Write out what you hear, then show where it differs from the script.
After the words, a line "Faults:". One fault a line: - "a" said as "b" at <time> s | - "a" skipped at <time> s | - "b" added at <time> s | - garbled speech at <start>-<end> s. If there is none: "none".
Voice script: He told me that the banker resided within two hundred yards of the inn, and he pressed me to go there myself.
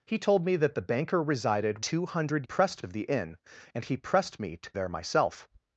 He told me that the banker resided two hundred pressed of the inn, and he pressed me to there myself.
Faults:
- "within" skipped at 1.9 s
- "yards" said as "pressed" at 2.4 s
- "go" skipped at 4.7 s